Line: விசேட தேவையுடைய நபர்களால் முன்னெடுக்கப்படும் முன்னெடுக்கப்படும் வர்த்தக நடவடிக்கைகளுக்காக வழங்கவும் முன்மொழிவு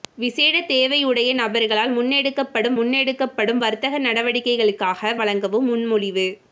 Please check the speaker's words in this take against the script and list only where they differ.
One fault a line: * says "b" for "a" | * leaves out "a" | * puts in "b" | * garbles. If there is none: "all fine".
all fine